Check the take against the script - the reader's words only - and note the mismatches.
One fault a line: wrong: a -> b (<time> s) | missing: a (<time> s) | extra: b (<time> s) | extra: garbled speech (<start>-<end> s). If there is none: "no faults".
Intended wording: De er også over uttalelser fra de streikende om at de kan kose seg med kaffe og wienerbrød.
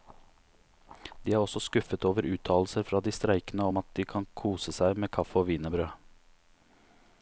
extra: skuffet (1.6 s)